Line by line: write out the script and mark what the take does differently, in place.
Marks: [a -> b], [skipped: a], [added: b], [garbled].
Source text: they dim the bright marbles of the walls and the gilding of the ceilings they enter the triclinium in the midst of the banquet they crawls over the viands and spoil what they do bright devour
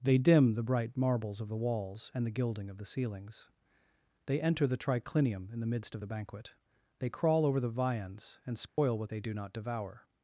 they dim the bright marbles of the walls and the gilding of the ceilings they enter the triclinium in the midst of the banquet they [crawls -> crawl] over the viands and spoil what they do [bright -> not] devour